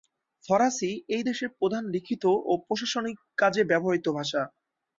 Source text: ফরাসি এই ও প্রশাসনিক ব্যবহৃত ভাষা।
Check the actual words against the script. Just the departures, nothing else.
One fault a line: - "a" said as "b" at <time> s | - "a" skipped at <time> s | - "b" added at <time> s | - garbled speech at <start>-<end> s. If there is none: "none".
- "দেশের প্রধান লিখিত" added at 1.2 s
- "কাজে" added at 3.4 s